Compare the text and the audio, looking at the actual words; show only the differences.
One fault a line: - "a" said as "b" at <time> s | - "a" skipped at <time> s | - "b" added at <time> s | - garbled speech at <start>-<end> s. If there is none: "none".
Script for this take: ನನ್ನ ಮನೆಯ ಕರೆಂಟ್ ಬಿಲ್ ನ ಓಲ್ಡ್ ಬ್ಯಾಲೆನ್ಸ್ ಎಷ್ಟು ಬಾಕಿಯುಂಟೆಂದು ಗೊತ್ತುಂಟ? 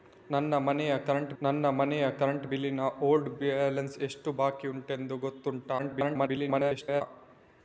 - "ನನ್ನ ಮನೆಯ ಕರೆಂಟ್" added at 1.4 s
- garbled speech at 5.8-7.0 s